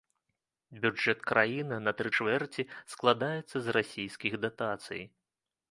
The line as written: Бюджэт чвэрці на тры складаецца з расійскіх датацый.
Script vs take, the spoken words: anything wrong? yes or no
yes